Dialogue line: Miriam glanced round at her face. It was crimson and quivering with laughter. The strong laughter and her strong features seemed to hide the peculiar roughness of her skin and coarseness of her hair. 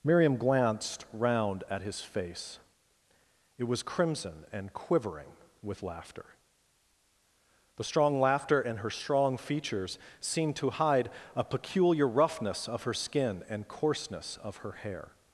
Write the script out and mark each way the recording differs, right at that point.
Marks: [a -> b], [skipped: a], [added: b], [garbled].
Miriam glanced round at [her -> his] face. It was crimson and quivering with laughter. The strong laughter and her strong features seemed to hide [the -> a] peculiar roughness of her skin and coarseness of her hair.